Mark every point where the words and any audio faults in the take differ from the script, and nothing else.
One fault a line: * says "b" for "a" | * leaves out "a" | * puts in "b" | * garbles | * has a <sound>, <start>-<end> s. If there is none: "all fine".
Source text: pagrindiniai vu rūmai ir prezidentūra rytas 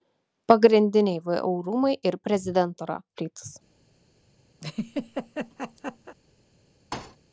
* has a laugh, 4.6-6.2 s
* has a thud, 6.9-7.2 s